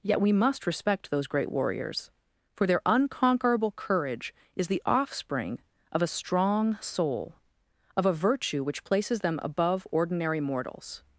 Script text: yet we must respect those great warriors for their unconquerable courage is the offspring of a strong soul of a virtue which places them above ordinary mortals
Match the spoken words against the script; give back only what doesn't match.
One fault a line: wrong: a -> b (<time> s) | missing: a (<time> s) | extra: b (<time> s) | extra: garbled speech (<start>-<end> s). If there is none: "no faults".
no faults